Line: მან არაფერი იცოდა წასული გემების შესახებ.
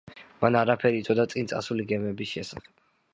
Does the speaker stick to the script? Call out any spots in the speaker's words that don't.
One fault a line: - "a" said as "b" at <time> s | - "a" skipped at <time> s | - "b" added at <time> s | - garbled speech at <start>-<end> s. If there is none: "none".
- "წინ" added at 1.3 s